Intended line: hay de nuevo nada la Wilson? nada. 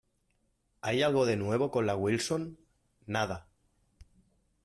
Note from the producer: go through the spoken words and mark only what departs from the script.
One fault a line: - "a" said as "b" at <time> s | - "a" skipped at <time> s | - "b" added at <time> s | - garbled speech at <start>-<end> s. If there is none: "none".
- "algo" added at 1.0 s
- "nada" said as "con" at 1.7 s